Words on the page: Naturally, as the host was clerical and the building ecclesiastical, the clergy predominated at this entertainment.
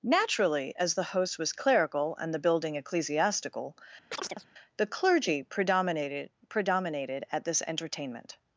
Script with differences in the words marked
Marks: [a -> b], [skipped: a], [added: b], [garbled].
Naturally, as the host was clerical and the building ecclesiastical, the clergy predominated [added: predominated] at this entertainment.